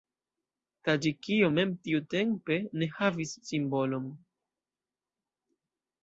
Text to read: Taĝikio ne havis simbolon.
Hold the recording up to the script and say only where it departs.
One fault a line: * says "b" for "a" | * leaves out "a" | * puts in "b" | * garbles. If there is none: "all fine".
* puts in "mem tiutempe"